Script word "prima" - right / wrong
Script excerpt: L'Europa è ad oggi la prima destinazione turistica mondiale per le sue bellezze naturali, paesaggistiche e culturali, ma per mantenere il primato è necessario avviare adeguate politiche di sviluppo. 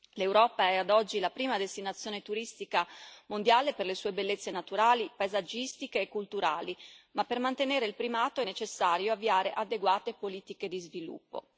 right